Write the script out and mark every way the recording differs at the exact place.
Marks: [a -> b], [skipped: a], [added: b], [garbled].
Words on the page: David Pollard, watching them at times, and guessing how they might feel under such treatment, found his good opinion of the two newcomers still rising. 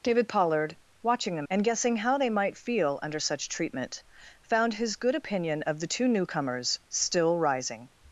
David Pollard, watching them [skipped: at times,] and guessing how they might feel under such treatment, found his good opinion of the two newcomers still rising.